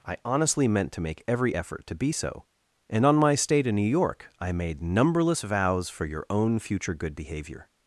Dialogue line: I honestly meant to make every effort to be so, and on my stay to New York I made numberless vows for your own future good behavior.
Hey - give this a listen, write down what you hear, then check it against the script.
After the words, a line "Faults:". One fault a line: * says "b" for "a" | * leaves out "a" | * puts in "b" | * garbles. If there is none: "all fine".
I honestly meant to make every effort to be so, and on my stay to New York I made numberless vows for your own future good behavior.
Faults:
all fine